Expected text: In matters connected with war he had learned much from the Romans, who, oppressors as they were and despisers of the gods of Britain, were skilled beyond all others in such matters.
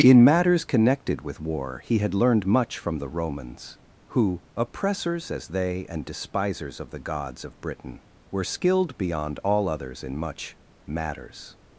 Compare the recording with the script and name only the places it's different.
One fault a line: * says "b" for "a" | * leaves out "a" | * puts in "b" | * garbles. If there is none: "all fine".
* leaves out "were"
* says "much" for "such"